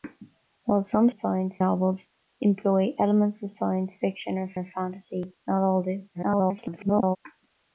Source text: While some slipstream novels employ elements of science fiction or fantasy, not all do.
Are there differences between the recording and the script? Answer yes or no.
yes